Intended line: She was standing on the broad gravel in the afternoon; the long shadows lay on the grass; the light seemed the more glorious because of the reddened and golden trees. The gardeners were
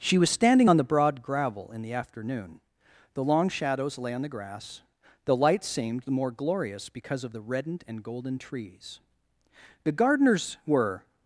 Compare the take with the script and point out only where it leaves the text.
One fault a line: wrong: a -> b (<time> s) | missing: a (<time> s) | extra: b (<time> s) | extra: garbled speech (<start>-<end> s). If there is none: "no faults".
no faults